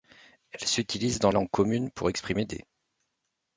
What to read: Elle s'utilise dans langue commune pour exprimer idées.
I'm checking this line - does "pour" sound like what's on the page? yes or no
yes